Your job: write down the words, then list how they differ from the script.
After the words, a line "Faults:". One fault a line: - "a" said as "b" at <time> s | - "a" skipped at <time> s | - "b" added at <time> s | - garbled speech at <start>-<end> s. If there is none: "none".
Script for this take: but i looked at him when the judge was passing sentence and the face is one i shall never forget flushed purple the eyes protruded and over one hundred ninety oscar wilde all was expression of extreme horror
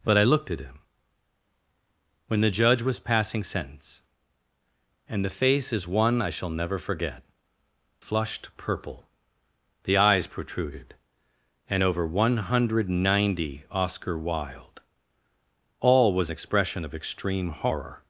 but i looked at him when the judge was passing sentence and the face is one i shall never forget flushed purple the eyes protruded and over one hundred ninety oscar wilde all was expression of extreme horror
Faults:
none